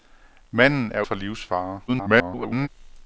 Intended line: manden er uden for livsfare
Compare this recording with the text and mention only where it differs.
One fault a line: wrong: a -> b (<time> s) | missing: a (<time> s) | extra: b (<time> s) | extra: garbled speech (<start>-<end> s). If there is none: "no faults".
missing: uden (1.0 s)
extra: garbled speech (1.9-2.7 s)